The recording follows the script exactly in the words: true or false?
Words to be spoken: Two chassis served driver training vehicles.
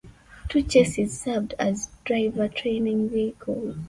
false